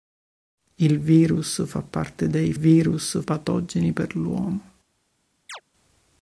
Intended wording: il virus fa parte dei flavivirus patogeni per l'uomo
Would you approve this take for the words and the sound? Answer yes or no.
no